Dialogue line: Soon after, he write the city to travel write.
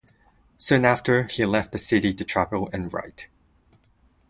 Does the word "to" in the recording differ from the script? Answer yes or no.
no